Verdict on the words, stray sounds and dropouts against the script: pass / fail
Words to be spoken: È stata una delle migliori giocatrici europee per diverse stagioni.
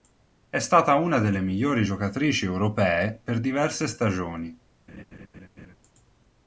fail